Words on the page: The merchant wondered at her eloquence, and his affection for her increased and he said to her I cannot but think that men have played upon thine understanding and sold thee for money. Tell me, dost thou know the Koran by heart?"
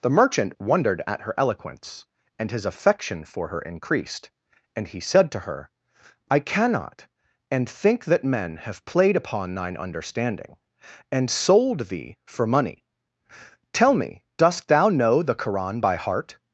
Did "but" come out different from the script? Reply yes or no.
yes